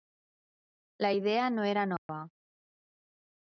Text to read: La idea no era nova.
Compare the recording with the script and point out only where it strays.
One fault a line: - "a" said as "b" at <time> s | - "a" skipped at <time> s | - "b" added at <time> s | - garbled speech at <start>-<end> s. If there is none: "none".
none